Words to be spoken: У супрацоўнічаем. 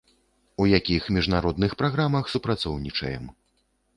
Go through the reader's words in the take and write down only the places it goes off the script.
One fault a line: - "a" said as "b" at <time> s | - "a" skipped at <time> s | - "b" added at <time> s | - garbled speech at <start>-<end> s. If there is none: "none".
- "якіх міжнародных праграмах" added at 0.7 s